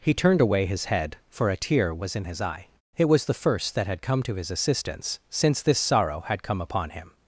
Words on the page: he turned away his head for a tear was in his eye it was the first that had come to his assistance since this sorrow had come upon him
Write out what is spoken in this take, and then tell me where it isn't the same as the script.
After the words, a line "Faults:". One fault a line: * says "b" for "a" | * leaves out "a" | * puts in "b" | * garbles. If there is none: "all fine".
he turned away his head for a tear was in his eye it was the first that had come to his assistance since this sorrow had come upon him
Faults:
all fine